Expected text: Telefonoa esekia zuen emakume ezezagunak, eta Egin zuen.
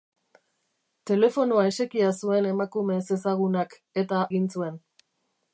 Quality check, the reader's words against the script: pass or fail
pass